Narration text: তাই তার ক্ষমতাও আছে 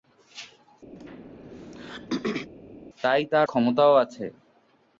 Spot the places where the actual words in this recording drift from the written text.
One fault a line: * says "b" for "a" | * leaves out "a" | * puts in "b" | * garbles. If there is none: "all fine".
all fine